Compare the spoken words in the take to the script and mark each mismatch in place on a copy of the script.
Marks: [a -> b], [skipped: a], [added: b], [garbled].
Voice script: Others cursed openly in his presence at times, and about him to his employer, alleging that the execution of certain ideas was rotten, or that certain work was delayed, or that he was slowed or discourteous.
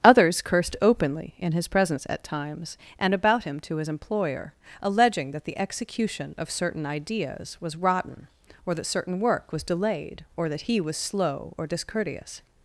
Others cursed openly in his presence at times, and about him to his employer, alleging that the execution of certain ideas was rotten, or that certain work was delayed, or that he was [slowed -> slow] or discourteous.